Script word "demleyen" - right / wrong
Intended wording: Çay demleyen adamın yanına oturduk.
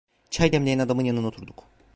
right